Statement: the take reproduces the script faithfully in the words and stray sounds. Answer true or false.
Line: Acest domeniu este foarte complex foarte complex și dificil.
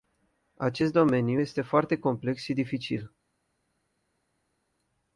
false